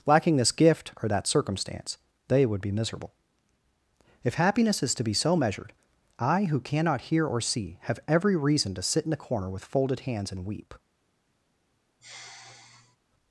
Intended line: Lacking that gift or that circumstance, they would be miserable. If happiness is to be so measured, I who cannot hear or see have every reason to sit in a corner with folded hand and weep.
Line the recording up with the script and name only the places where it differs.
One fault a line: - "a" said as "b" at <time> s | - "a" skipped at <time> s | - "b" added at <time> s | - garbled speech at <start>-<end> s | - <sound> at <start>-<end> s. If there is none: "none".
- "that" said as "this" at 0.4 s
- "hand" said as "hands" at 10.0 s
- sigh at 12.0-13.0 s